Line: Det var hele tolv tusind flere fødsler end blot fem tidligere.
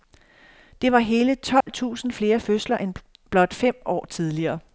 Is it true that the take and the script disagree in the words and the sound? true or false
true